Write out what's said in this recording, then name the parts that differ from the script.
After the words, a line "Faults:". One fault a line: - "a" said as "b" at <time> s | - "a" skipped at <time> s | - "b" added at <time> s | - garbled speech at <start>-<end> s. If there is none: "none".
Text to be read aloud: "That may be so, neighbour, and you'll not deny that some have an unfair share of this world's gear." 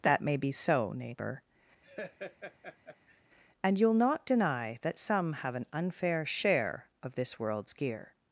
"That may be so, neighbour, and you'll not deny that some have an unfair share of this world's gear."
Faults:
none